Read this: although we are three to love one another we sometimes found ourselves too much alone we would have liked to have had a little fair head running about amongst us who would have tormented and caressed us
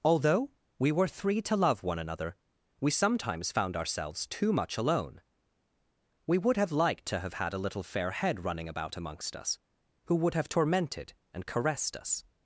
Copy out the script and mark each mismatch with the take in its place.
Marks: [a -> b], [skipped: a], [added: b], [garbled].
although we [are -> were] three to love one another we sometimes found ourselves too much alone we would have liked to have had a little fair head running about amongst us who would have tormented and caressed us